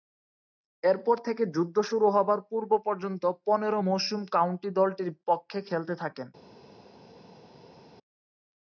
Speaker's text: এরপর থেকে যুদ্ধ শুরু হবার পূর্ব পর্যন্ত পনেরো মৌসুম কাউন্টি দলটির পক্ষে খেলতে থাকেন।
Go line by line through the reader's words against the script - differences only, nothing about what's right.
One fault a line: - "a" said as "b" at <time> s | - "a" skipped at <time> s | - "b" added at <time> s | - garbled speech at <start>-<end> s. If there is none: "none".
none